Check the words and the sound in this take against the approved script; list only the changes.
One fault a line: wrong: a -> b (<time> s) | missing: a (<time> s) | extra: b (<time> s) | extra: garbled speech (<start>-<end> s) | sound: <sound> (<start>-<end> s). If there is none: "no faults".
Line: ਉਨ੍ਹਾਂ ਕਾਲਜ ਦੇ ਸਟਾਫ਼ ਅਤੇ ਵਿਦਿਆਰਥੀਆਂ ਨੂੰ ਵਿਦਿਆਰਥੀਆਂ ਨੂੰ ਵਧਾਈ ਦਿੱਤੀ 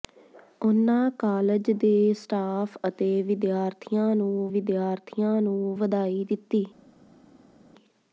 no faults